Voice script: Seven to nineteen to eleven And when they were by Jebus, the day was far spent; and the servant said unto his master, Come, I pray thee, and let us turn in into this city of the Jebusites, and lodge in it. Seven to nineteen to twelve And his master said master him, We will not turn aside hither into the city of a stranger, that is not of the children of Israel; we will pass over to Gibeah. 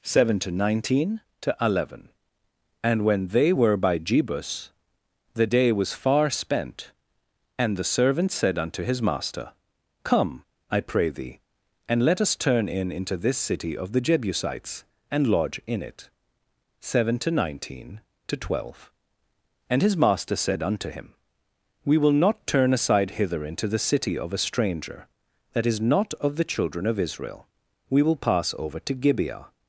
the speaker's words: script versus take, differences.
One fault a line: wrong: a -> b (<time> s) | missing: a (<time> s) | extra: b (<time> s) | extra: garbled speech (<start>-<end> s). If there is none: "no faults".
wrong: master -> unto (20.6 s)